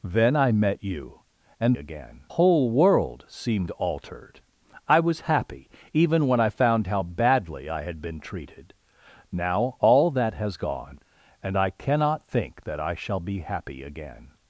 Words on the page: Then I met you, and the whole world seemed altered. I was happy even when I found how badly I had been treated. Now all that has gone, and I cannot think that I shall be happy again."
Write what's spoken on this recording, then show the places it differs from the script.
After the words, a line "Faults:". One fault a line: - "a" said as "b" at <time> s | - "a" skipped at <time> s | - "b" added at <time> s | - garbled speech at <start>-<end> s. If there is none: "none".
Then I met you, and again whole world seemed altered. I was happy even when I found how badly I had been treated. Now all that has gone, and I cannot think that I shall be happy again."
Faults:
- "the" said as "again" at 1.7 s